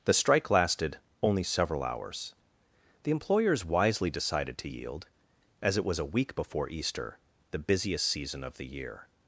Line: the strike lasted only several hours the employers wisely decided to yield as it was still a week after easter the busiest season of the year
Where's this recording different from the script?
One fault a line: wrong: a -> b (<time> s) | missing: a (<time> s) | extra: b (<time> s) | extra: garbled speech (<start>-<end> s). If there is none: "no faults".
missing: still (6.0 s)
wrong: after -> before (6.4 s)